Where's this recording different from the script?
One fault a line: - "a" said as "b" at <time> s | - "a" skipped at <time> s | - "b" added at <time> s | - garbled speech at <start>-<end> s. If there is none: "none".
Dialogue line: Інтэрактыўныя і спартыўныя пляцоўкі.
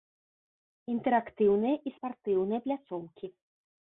none